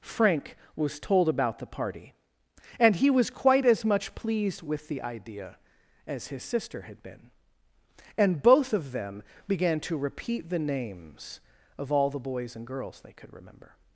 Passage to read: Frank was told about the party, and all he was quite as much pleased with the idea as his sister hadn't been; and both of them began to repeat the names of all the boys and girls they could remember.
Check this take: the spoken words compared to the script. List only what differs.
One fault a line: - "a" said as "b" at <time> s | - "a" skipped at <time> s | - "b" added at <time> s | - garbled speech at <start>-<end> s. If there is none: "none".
- "all" skipped at 3.0 s
- "hadn't" said as "had" at 6.8 s